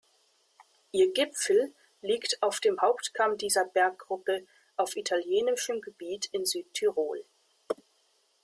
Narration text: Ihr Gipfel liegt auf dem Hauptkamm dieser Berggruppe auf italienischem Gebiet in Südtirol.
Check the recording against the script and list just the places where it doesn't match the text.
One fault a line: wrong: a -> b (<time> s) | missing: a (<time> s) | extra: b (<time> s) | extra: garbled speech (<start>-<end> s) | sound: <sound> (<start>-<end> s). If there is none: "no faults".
no faults